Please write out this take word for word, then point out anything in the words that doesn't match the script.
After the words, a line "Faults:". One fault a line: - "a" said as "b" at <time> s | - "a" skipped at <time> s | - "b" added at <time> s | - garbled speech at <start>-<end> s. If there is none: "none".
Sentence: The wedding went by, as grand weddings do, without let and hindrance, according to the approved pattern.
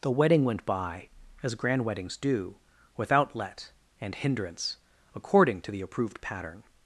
The wedding went by, as grand weddings do, without let and hindrance, according to the approved pattern.
Faults:
none